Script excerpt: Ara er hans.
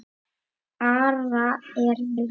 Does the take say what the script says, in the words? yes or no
yes